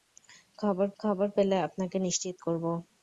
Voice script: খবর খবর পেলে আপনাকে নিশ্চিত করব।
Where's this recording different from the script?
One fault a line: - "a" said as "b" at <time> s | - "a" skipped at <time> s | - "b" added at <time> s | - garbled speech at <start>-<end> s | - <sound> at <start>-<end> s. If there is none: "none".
none